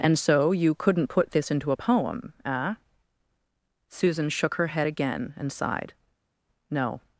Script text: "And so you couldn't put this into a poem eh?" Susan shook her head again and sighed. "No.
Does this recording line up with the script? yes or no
yes